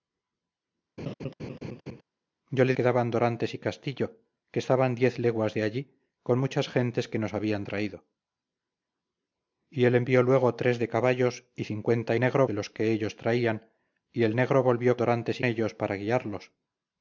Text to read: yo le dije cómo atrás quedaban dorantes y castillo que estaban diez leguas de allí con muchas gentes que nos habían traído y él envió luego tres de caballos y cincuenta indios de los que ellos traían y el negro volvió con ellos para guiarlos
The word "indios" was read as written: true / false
false